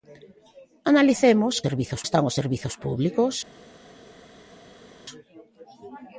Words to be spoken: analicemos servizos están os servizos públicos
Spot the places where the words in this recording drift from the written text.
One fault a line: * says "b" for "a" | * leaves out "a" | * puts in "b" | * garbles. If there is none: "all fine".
all fine